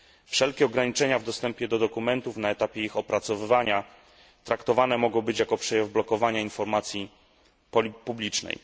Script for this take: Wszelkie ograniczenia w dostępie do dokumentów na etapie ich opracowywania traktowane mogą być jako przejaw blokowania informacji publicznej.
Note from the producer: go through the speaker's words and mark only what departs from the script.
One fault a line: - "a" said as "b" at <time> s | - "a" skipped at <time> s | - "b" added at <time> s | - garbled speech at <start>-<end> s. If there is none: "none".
none